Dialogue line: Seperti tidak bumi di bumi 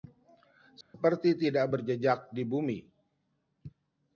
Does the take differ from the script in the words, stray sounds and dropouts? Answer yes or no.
yes